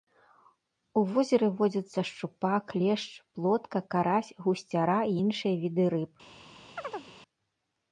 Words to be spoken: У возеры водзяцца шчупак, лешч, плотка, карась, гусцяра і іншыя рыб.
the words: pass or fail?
fail